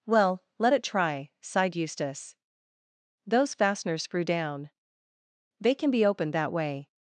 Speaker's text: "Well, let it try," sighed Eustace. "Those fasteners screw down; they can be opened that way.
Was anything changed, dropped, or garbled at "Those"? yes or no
no